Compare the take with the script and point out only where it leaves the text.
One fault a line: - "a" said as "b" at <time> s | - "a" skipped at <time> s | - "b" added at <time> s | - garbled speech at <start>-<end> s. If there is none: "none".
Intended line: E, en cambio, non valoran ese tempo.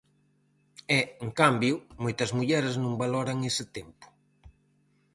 - "moitas mulleres" added at 2.0 s